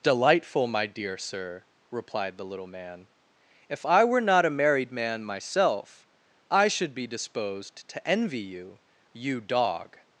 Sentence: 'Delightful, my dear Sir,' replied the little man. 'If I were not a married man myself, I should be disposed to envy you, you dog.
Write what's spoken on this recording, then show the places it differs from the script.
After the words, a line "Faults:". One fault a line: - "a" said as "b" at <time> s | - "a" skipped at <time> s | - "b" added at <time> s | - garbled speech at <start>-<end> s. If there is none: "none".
'Delightful, my dear Sir,' replied the little man. 'If I were not a married man myself, I should be disposed to envy you, you dog.
Faults:
none